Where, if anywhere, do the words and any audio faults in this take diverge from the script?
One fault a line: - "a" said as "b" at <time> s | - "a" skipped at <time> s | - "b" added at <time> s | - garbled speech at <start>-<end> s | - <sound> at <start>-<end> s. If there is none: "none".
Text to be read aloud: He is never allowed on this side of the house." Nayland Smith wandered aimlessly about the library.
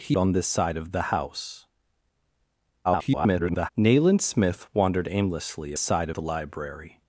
- "is never allowed" skipped at 0.2 s
- garbled speech at 2.8-3.7 s
- "about" said as "side" at 5.8 s